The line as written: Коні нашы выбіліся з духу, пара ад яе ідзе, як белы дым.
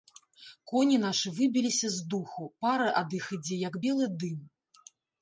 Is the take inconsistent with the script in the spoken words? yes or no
yes